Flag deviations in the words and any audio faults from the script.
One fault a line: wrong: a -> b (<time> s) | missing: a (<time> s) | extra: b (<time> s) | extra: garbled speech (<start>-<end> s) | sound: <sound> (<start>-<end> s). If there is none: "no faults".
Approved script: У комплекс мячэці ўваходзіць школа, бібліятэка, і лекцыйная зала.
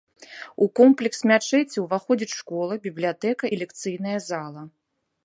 no faults